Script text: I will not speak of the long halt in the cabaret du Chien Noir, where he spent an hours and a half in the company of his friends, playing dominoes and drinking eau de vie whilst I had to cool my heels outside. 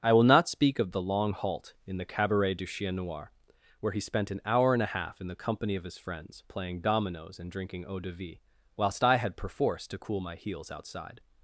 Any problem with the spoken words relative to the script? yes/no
yes